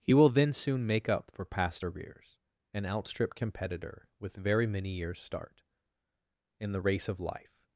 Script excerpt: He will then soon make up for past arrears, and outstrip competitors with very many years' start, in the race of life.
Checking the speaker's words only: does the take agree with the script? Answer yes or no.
no